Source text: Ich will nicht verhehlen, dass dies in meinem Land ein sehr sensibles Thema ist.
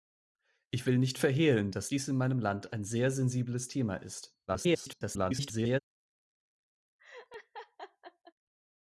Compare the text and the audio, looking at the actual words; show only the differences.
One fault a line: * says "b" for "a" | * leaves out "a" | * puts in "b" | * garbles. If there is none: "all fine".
* garbles